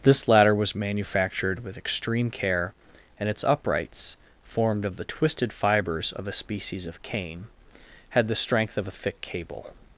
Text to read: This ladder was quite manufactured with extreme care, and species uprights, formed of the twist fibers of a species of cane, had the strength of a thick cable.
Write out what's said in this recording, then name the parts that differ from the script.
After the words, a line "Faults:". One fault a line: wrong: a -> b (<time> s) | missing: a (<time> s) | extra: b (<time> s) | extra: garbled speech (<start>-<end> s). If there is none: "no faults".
This ladder was manufactured with extreme care, and its uprights, formed of the twisted fibers of a species of cane, had the strength of a thick cable.
Faults:
missing: quite (0.8 s)
wrong: species -> its (3.3 s)
wrong: twist -> twisted (5.0 s)